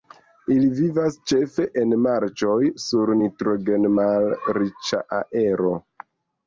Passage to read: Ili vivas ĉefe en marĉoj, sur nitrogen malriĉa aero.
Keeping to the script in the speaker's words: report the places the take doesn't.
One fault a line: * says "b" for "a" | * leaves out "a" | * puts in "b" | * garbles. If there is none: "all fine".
all fine